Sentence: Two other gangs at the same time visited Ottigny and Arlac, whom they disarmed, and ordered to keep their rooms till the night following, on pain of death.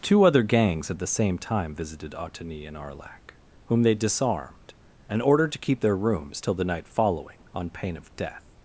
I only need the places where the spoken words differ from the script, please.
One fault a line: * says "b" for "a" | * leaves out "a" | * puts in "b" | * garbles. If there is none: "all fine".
all fine